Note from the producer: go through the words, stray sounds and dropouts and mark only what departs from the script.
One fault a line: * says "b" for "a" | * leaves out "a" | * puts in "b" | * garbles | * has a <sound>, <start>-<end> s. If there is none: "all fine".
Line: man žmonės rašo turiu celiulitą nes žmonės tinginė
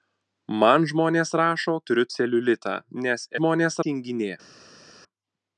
all fine